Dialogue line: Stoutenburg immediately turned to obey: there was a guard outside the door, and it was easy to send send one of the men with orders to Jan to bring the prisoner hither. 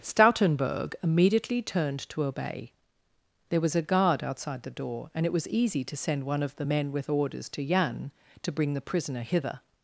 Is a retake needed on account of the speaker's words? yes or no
yes